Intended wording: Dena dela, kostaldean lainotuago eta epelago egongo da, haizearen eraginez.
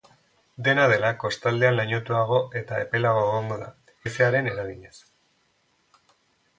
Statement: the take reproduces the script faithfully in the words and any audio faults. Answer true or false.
true